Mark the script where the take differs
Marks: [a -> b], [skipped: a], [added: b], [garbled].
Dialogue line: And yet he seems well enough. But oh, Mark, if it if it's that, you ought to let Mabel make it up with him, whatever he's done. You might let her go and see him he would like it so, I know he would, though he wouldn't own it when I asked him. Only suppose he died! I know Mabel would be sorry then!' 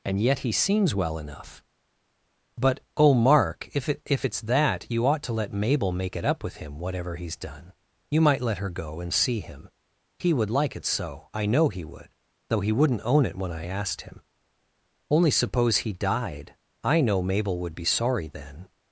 And yet he seems well enough. But oh, Mark, if it if it's that, you ought to let Mabel make it up with him, whatever he's done. You might let her go and see him he would like it so, I know he would, though he wouldn't own it when I asked him. Only suppose he died! I know Mabel would be sorry then!'